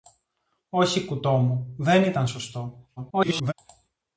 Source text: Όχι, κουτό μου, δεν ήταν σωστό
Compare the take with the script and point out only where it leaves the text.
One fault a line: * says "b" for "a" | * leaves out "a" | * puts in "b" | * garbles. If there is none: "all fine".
* garbles